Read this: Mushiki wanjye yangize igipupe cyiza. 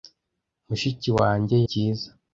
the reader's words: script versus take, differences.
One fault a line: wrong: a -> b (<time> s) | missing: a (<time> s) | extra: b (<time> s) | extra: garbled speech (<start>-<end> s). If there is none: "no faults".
missing: yangize igipupe (1.6 s)